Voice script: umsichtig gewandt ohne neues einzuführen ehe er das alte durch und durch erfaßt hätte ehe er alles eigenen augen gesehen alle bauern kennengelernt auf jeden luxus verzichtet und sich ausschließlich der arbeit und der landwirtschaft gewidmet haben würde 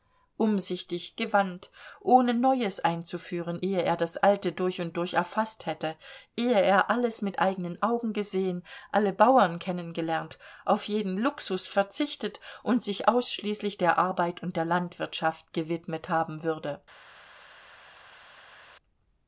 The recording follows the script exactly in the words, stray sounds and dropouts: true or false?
false